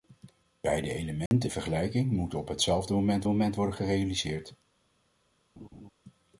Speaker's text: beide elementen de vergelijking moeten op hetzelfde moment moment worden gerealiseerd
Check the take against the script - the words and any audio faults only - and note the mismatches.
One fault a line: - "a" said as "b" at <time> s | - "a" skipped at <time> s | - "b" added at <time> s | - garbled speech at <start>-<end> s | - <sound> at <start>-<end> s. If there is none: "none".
- dropout at 1.3-1.3 s
- laugh at 5.6-5.9 s